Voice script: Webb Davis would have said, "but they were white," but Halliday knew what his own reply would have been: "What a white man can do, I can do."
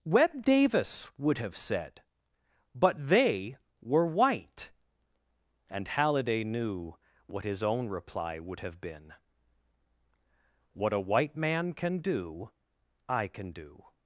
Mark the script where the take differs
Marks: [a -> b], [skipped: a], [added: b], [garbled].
Webb Davis would have said, "but they were white," [but -> and] Halliday knew what his own reply would have been: "What a white man can do, I can do."